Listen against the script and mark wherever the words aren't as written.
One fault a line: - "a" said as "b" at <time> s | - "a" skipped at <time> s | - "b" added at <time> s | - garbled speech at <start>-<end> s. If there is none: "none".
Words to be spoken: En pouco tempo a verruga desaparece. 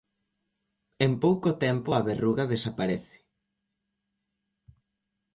none